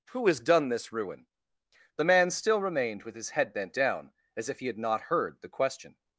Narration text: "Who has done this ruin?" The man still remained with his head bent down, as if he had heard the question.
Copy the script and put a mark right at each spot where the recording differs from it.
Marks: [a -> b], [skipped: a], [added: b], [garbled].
"Who has done this ruin?" The man still remained with his head bent down, as if he had [added: not] heard the question.